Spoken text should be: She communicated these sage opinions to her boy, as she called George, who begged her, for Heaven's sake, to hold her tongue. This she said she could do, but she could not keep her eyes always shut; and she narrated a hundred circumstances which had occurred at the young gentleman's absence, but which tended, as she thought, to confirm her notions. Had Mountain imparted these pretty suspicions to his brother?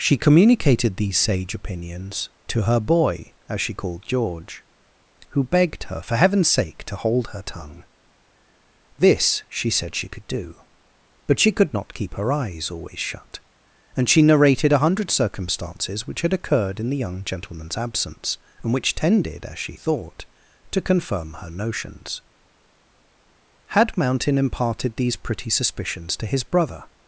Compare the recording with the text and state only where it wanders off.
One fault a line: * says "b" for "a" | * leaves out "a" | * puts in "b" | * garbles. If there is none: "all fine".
* says "in" for "at"
* says "and" for "but"